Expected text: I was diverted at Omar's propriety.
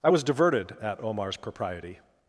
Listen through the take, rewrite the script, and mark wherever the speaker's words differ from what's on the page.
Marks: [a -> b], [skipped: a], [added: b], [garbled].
I was diverted at Omar's propriety.